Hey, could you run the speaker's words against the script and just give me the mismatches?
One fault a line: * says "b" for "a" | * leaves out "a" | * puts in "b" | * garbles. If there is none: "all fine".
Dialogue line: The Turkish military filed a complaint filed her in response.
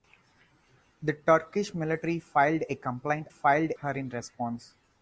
all fine